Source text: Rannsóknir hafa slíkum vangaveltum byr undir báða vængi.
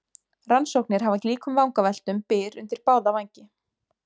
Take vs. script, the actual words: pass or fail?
pass